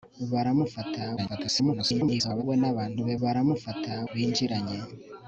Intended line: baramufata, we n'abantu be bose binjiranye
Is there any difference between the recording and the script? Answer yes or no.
yes